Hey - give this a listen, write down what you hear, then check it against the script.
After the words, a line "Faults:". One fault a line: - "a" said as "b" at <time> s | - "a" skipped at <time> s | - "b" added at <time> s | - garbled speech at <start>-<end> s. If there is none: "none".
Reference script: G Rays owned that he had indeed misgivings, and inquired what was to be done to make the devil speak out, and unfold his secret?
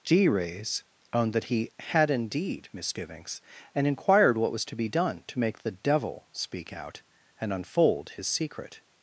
G Rays owned that he had indeed misgivings, and inquired what was to be done to make the devil speak out, and unfold his secret?
Faults:
none